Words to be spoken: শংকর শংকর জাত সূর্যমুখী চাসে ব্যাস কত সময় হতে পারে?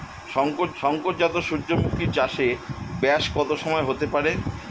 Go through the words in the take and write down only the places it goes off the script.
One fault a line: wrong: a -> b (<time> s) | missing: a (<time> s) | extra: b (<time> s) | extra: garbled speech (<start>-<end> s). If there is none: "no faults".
no faults